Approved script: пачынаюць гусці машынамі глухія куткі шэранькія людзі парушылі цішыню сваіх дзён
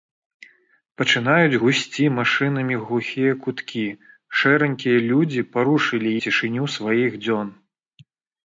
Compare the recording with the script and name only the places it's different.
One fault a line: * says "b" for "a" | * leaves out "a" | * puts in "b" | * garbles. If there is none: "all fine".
all fine